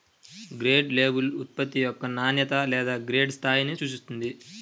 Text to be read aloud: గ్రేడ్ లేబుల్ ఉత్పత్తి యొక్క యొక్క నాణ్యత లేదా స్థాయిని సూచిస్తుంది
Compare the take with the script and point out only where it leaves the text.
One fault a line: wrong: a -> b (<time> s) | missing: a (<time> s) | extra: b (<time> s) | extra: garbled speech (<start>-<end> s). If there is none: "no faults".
missing: యొక్క (2.0 s)
extra: గ్రేడ్ (3.1 s)